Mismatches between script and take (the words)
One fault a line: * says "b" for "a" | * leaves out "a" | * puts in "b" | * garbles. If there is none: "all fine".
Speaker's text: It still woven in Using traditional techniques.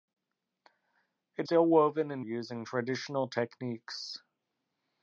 all fine